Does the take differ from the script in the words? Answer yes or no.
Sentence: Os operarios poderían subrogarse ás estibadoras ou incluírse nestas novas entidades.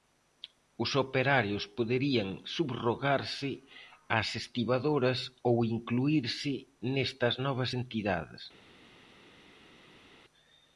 no